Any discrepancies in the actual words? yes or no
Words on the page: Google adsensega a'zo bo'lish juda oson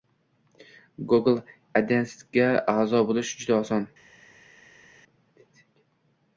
no